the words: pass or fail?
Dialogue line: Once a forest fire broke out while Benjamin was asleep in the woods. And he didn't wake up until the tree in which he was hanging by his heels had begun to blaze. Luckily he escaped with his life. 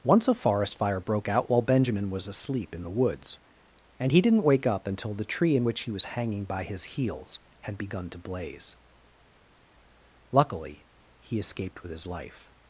pass